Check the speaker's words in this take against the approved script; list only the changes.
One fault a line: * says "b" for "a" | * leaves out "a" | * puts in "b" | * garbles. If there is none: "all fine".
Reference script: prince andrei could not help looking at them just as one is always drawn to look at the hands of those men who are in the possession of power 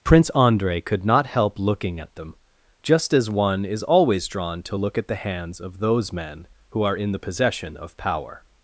all fine